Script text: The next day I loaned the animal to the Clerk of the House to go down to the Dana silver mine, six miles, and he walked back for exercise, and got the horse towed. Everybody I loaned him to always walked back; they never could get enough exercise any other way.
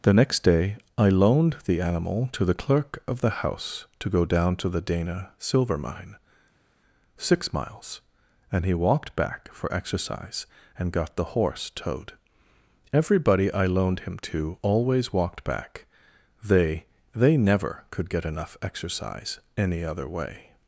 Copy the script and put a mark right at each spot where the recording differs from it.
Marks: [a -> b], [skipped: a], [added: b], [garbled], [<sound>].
The next day I loaned the animal to the Clerk of the House to go down to the Dana silver mine, six miles, and he walked back for exercise, and got the horse towed. Everybody I loaned him to always walked back; they [added: they] never could get enough exercise any other way.